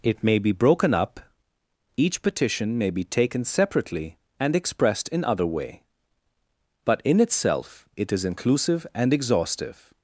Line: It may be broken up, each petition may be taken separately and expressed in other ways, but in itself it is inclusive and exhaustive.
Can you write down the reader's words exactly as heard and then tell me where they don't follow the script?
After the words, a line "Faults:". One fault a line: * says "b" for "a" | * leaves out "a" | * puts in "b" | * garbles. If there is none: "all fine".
It may be broken up, each petition may be taken separately and expressed in other way, but in itself it is inclusive and exhaustive.
Faults:
* says "way" for "ways"